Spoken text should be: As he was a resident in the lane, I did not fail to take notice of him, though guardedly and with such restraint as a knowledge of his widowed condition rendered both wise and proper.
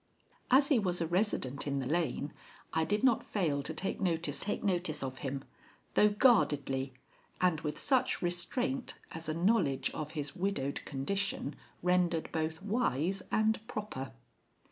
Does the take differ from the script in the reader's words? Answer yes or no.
yes